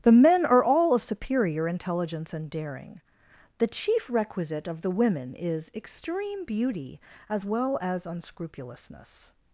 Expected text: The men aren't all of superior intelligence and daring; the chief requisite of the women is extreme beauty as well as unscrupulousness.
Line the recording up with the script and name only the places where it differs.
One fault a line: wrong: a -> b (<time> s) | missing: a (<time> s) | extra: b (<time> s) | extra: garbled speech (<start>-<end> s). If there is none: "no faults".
wrong: aren't -> are (0.5 s)